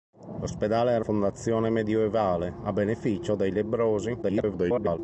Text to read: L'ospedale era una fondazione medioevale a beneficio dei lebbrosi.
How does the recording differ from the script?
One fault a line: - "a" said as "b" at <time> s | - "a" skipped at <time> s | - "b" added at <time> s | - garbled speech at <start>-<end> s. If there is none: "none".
- "una" skipped at 1.1 s
- garbled speech at 4.2-5.0 s